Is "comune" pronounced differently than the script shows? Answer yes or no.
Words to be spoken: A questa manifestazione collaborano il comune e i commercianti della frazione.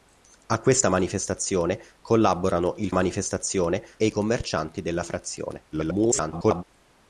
yes